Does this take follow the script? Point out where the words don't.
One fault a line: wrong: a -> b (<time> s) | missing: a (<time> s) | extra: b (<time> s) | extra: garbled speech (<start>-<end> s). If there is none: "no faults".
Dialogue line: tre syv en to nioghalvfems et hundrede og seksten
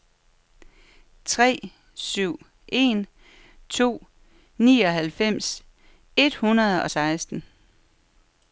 no faults